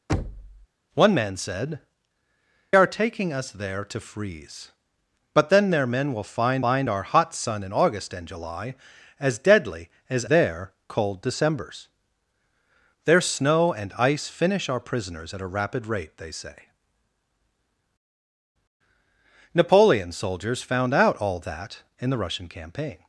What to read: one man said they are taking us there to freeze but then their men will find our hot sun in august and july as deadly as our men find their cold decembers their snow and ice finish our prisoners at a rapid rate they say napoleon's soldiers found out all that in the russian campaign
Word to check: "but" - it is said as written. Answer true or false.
true